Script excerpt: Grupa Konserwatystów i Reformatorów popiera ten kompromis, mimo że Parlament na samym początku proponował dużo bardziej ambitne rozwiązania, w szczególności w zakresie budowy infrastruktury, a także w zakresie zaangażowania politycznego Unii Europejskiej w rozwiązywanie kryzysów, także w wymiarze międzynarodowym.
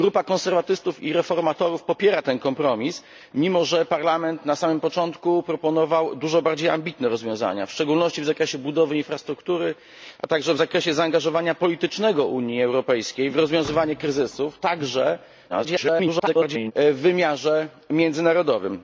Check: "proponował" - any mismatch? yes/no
no